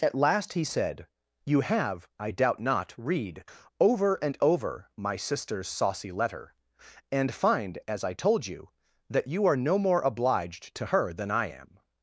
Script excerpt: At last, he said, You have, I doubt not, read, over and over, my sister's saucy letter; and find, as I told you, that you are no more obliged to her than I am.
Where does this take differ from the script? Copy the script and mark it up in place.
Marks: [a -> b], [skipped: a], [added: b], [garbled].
At last, he said, You have, I doubt not, read, over and over, my sister's saucy letter; and find, as I told you, that you are no more obliged to her than I am.